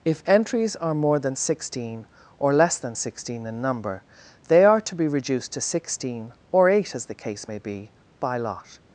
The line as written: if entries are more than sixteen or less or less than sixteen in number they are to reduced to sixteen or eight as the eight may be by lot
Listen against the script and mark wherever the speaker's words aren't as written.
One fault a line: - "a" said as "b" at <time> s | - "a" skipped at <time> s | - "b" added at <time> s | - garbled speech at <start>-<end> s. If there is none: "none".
- "or less" skipped at 2.8 s
- "be" added at 4.9 s
- "eight" said as "case" at 7.1 s